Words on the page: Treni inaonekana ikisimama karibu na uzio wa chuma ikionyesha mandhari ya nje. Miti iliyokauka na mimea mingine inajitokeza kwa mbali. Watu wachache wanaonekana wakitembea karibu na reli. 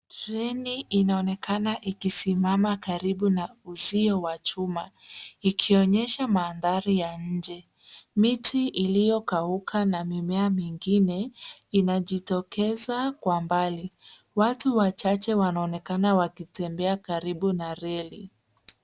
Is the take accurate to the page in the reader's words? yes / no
yes